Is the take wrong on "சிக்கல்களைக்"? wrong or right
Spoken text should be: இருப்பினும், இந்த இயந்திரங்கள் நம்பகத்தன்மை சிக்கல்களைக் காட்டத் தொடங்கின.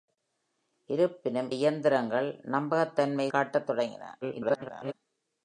wrong